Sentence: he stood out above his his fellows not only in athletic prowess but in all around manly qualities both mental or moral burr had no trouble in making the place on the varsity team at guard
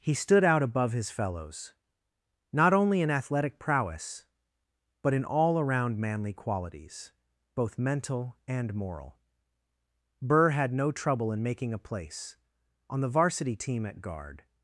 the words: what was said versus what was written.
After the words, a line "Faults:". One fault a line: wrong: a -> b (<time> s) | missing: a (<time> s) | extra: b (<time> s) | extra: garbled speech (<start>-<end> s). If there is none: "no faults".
he stood out above his fellows not only in athletic prowess but in all around manly qualities both mental and moral burr had no trouble in making a place on the varsity team at guard
Faults:
missing: his (1.1 s)
wrong: or -> and (8.5 s)
wrong: the -> a (11.7 s)